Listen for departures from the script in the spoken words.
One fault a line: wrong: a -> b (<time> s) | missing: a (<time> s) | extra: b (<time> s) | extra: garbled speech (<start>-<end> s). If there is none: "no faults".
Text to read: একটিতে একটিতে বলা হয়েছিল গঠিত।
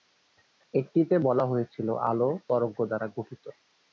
missing: একটিতে (1.1 s)
extra: আলো তরঙ্গ দ্বারা (2.1 s)